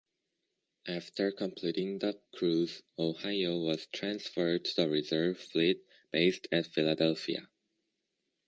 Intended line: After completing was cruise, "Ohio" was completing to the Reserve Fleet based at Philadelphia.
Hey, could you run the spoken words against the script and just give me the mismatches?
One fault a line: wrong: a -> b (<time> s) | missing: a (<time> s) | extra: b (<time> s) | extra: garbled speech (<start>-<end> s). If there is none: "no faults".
wrong: was -> the (2.0 s)
wrong: completing -> transferred (3.9 s)